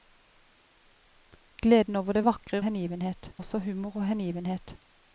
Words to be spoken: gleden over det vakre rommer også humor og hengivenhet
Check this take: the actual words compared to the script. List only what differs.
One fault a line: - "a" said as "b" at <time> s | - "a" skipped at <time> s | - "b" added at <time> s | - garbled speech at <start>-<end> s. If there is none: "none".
- "rommer" said as "hengivenhet" at 2.6 s